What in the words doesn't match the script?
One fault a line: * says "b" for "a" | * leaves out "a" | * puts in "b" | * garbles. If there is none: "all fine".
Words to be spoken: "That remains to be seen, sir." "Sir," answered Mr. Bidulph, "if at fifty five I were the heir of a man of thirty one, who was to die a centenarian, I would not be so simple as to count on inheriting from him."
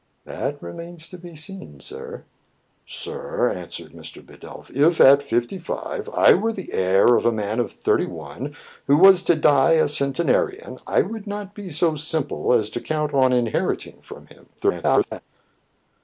* garbles